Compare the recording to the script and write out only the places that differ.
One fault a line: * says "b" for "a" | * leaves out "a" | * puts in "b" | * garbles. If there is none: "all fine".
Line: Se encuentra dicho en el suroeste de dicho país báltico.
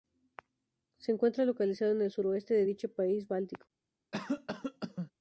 * says "localizado" for "dicho"